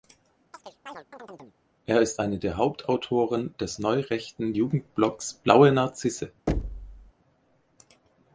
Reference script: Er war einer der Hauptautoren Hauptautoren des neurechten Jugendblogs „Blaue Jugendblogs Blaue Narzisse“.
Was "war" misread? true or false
true